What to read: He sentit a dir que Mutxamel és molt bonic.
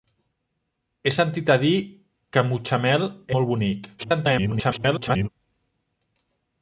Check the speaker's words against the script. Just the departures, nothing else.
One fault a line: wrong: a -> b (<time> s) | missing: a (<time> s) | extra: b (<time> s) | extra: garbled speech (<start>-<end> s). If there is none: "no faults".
missing: és (3.1 s)
extra: garbled speech (4.0-5.3 s)